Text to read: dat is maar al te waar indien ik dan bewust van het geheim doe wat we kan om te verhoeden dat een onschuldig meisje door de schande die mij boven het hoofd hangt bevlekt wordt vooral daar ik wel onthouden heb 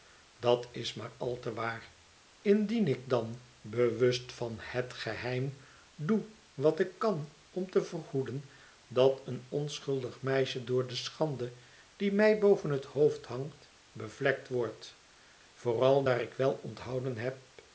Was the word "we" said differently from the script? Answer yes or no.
yes